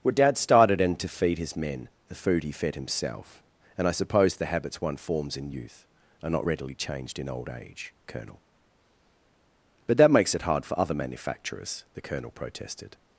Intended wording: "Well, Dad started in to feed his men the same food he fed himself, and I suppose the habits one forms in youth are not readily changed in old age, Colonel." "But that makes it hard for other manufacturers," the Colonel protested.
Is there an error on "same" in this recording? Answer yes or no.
yes